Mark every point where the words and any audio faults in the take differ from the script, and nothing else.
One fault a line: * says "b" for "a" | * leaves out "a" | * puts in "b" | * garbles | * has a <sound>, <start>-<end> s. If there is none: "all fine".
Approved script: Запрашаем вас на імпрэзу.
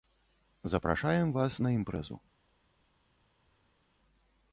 all fine